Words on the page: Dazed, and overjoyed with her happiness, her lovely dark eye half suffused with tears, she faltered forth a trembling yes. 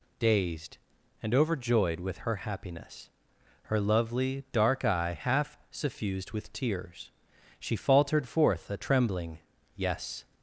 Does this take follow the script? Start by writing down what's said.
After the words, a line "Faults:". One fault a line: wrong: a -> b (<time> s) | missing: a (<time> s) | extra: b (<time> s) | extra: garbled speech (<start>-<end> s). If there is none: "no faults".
Dazed, and overjoyed with her happiness, her lovely dark eye half suffused with tears, she faltered forth a trembling yes.
Faults:
no faults